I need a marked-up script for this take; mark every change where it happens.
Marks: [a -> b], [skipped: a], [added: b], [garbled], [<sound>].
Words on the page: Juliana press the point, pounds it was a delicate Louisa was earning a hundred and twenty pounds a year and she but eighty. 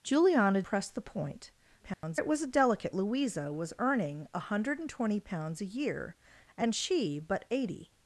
Juliana press the point, pounds [dropout] it was a delicate Louisa was earning a hundred and twenty pounds a year and she but eighty.